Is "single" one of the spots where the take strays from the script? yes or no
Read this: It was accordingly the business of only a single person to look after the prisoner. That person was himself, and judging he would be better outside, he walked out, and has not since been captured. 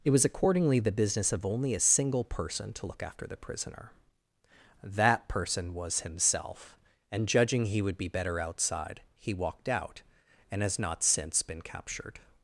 no